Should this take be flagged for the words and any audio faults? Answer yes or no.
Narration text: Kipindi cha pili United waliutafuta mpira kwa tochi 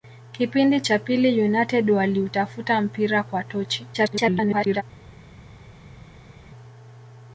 yes